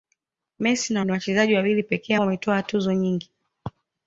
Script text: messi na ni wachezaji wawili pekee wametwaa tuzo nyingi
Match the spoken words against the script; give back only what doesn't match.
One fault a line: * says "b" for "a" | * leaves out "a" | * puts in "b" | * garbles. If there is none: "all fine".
all fine